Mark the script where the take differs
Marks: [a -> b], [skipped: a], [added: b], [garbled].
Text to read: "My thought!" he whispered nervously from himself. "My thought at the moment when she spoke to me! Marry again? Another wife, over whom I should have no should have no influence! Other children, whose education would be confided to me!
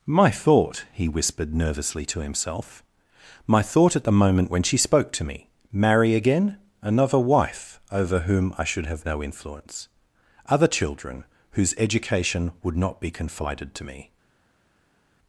"My thought!" he whispered nervously [from -> to] himself. "My thought at the moment when she spoke to me! Marry again? Another wife, over whom I should have no [skipped: should have no] influence! Other children, whose education would [added: not] be confided to me!